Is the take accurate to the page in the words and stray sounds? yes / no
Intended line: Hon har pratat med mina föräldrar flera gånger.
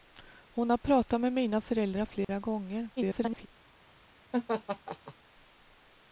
no